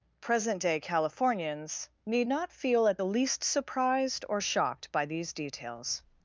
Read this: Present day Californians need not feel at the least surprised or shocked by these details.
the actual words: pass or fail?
pass